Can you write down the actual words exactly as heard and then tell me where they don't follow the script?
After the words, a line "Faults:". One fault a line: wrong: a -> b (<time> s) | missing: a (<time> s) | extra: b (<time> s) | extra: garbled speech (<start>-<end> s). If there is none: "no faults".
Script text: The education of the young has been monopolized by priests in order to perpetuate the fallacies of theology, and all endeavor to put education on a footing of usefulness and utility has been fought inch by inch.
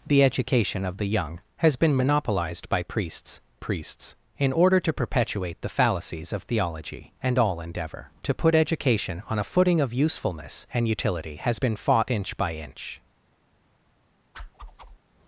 The education of the young has been monopolized by priests priests in order to perpetuate the fallacies of theology, and all endeavor to put education on a footing of usefulness and utility has been fought inch by inch.
Faults:
extra: priests (3.5 s)